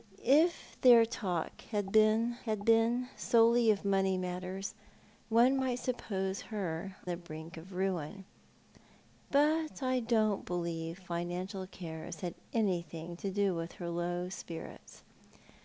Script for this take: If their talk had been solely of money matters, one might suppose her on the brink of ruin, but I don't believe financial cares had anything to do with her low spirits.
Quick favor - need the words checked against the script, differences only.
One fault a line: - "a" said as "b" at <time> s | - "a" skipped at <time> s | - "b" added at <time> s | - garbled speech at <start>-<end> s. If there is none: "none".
- "had been" added at 2.4 s
- "on" skipped at 7.0 s